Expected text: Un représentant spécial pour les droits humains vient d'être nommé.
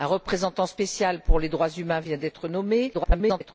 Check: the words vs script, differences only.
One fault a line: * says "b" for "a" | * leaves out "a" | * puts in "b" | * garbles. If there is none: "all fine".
* garbles